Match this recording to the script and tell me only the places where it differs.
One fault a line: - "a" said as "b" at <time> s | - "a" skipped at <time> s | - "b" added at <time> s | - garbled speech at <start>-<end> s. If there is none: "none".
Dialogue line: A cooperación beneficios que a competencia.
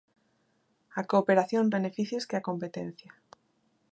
none